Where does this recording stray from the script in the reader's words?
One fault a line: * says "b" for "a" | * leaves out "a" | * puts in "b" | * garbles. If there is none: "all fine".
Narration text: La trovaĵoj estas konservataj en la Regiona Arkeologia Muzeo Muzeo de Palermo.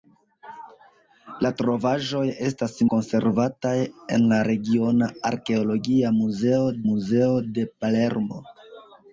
all fine